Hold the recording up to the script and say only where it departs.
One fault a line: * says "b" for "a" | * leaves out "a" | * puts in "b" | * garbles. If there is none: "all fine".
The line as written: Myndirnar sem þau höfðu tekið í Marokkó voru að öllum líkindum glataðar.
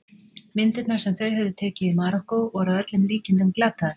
all fine